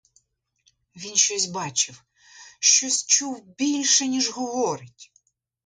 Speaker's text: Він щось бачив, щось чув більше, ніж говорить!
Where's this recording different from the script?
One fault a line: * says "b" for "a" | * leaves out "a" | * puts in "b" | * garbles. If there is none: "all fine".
all fine